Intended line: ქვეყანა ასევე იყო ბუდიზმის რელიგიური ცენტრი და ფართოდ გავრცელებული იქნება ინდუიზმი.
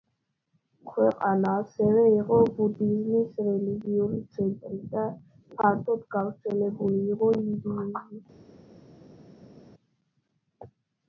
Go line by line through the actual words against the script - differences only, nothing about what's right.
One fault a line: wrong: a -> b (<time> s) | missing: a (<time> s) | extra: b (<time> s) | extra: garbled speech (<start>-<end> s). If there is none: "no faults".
wrong: იქნება -> იყო (7.2 s)